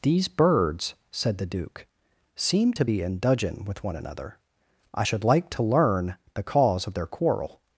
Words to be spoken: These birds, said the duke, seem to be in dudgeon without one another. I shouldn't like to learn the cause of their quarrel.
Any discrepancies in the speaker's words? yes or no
yes